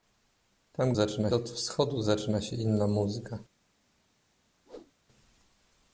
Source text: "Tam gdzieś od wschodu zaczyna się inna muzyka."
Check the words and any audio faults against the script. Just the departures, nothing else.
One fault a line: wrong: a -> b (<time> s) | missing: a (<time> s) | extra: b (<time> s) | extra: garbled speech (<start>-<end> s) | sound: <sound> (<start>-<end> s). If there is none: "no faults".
wrong: gdzieś -> zaczyna (0.9 s)
sound: whoosh (4.7-4.9 s)